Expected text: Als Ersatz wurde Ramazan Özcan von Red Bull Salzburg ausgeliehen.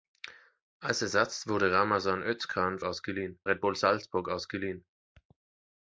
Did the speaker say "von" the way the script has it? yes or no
no